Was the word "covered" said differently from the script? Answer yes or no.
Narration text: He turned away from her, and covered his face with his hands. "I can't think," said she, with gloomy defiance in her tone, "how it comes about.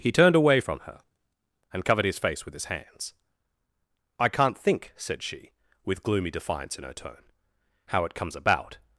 no